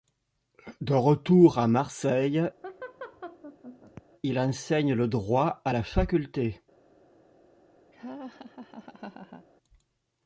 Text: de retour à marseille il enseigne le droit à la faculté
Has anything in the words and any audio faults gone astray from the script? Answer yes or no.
yes